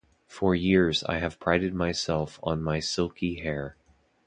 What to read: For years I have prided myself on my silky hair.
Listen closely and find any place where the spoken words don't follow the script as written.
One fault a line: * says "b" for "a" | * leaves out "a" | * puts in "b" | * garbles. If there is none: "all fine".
all fine